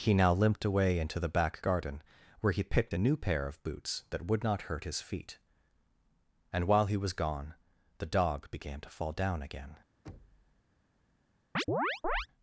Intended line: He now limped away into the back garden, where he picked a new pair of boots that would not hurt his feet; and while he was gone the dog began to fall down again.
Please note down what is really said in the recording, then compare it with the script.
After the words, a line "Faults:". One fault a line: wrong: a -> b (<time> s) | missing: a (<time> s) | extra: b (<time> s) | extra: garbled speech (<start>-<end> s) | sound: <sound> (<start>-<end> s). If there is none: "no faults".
He now limped away into the back garden, where he picked a new pair of boots that would not hurt his feet; and while he was gone the dog began to fall down again.
Faults:
sound: thud (10.1-10.6 s)
sound: chirp (11.6-12.3 s)